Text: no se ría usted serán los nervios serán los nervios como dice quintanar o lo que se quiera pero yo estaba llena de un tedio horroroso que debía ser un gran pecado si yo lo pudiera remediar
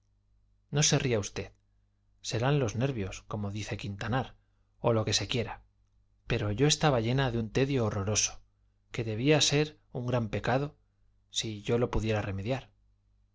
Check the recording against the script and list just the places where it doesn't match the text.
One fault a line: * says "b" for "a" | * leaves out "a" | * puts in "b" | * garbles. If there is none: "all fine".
* leaves out "serán los nervios"